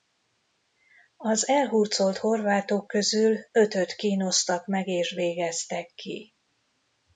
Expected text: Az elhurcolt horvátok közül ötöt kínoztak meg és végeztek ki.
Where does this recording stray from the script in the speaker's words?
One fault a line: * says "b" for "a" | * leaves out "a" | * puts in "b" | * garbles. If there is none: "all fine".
all fine